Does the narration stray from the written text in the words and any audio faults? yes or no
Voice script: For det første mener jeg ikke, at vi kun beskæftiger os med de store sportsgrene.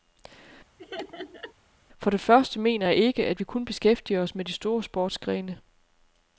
yes